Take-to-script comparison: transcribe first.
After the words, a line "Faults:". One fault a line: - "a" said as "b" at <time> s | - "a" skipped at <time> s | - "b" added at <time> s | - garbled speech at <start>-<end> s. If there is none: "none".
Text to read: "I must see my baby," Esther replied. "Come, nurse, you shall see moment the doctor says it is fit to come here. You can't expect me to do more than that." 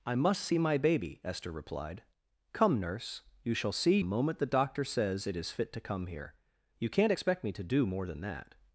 "I must see my baby," Esther replied. "Come, nurse, you shall see moment the doctor says it is fit to come here. You can't expect me to do more than that."
Faults:
none